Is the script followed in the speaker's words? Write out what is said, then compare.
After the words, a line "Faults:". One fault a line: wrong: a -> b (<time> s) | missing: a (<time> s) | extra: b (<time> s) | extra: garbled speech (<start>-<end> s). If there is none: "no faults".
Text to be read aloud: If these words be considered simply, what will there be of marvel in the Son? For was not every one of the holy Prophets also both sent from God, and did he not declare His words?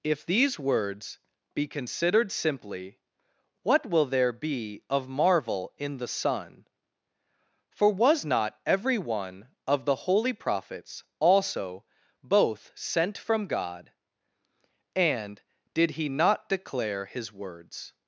If these words be considered simply, what will there be of marvel in the Son? For was not every one of the holy Prophets also both sent from God, and did he not declare His words?
Faults:
no faults